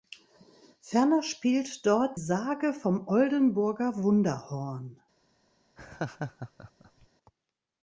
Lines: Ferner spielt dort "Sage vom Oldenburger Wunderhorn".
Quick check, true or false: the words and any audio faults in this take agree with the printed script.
false